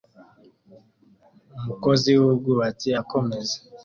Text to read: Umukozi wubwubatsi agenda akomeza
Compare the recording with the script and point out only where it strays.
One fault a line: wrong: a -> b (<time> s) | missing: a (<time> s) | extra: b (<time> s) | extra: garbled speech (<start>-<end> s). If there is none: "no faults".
missing: agenda (2.9 s)